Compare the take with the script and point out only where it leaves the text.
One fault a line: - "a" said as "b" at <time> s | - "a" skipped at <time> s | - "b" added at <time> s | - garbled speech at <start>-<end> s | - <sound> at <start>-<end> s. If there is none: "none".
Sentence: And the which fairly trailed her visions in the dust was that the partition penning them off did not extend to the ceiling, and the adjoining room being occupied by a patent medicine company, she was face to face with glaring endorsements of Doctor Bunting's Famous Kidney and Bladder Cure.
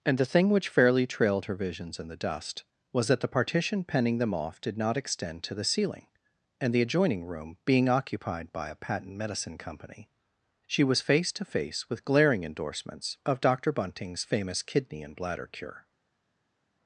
- "thing" added at 0.2 s